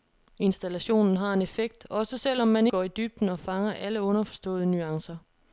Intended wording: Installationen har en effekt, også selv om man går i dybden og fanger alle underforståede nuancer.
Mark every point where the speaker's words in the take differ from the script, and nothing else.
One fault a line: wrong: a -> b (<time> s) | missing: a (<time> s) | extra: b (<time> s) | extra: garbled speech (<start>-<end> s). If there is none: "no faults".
no faults